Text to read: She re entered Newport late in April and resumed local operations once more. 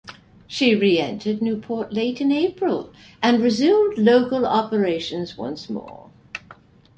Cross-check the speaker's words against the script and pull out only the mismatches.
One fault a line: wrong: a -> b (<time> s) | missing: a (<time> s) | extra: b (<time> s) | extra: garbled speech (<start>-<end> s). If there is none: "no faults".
no faults